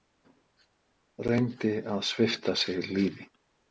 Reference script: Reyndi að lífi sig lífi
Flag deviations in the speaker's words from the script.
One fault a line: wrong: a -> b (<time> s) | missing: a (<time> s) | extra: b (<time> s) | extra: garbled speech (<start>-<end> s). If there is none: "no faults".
wrong: lífi -> svipta (2.1 s)